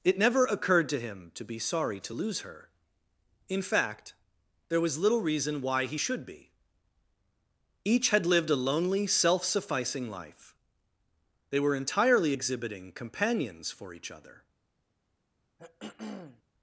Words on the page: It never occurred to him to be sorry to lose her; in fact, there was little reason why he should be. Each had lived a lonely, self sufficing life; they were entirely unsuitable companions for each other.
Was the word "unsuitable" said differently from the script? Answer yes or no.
yes